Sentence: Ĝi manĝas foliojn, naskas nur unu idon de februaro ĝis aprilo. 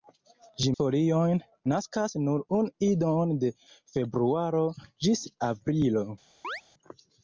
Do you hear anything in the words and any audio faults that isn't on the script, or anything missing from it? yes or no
yes